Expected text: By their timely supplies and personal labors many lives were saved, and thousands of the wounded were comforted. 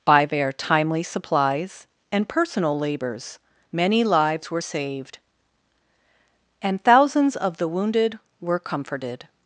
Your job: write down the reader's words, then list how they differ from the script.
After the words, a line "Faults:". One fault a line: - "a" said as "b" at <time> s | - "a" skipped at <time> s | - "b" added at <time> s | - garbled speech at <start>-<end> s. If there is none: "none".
By their timely supplies and personal labors many lives were saved, and thousands of the wounded were comforted.
Faults:
none